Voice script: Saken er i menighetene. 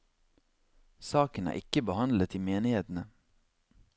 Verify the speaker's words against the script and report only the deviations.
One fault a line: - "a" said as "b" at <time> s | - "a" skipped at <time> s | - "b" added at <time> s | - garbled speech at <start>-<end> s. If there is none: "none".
- "ikke behandlet" added at 1.6 s